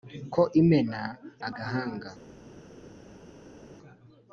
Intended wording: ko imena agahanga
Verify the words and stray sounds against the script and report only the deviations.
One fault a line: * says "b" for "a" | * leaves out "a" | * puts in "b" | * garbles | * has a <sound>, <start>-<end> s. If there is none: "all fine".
all fine